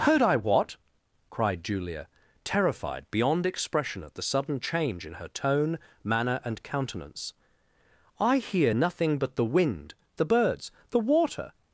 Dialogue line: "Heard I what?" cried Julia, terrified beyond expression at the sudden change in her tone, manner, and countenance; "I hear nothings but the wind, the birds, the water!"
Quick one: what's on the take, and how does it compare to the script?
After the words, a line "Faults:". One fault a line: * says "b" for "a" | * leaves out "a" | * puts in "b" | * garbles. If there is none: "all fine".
"Heard I what?" cried Julia, terrified beyond expression at the sudden change in her tone, manner, and countenance; "I hear nothing but the wind, the birds, the water!"
Faults:
* says "nothing" for "nothings"